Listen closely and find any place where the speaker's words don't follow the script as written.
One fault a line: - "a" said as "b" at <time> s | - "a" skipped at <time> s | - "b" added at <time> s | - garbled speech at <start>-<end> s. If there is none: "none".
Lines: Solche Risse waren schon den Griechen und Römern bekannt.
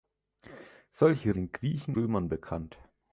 - "Risse waren schon" skipped at 1.4 s
- "und" skipped at 2.0 s